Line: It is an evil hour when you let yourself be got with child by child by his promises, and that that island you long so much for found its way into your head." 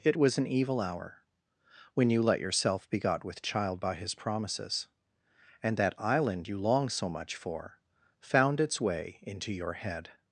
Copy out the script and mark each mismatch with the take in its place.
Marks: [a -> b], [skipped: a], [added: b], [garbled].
It [is -> was] an evil hour when you let yourself be got with child by [skipped: child by] his promises, and that [skipped: that] island you long so much for found its way into your head."